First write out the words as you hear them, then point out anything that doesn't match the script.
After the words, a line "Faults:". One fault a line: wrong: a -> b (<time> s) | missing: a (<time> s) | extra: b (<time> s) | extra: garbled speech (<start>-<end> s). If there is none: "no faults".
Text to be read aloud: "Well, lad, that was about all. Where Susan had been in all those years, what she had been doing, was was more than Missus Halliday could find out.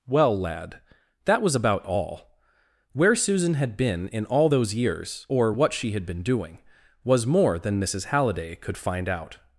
"Well, lad, that was about all. Where Susan had been in all those years, or what she had been doing, was more than Missus Halliday could find out.
Faults:
extra: or (5.3 s)
missing: was (7.2 s)